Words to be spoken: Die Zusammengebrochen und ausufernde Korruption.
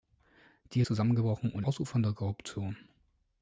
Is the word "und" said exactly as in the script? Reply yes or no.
yes